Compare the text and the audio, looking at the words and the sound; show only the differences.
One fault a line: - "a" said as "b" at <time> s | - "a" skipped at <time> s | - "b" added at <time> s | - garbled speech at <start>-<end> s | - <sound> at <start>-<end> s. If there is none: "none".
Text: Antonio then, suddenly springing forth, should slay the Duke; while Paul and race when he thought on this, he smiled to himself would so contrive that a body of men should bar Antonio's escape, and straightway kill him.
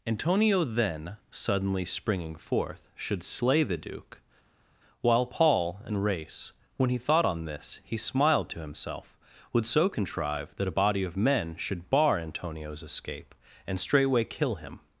none